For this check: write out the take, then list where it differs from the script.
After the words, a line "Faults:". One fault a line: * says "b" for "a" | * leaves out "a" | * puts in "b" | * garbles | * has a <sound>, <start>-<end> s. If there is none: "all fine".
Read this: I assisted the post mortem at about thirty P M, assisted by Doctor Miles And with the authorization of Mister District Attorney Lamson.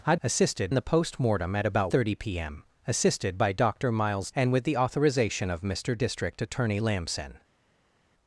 I assisted the post mortem at about thirty P M, assisted by Doctor Miles And with the authorization of Mister District Attorney Lamson.
Faults:
all fine